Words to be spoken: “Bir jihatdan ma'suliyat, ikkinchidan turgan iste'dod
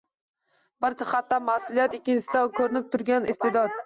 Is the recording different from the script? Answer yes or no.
yes